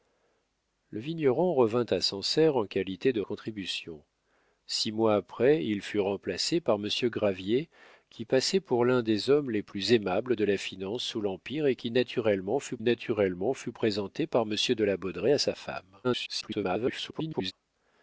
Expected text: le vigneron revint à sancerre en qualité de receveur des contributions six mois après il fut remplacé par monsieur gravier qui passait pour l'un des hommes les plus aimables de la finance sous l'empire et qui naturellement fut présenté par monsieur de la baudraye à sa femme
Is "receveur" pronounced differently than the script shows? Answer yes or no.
yes